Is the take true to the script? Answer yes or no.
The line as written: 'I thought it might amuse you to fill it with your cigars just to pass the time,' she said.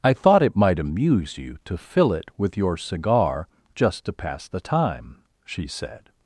no